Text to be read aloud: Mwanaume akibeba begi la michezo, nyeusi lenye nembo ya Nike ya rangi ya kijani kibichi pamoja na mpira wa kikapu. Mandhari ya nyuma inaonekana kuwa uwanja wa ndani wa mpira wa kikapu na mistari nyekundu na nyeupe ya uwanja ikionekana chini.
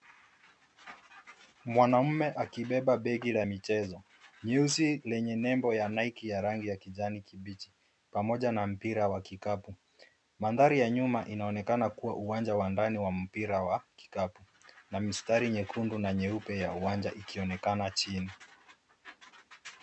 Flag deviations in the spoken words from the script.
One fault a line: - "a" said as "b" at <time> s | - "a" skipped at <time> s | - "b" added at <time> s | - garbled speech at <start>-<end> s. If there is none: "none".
none